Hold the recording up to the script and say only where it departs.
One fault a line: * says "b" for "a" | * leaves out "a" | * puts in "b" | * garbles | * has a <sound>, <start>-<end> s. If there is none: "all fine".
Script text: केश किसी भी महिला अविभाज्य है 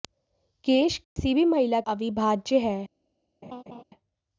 * has a dropout, 1.0-1.2 s
* has a laugh, 3.4-3.8 s